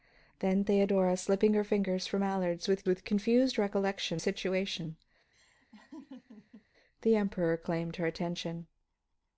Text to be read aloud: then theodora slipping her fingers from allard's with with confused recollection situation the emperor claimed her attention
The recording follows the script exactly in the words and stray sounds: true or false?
false